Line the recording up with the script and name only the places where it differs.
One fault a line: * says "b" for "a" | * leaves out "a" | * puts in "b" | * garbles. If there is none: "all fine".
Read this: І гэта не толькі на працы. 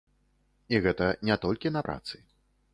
all fine